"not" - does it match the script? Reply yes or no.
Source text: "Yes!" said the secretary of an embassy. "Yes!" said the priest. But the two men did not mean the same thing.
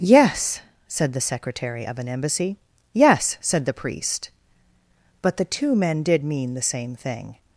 no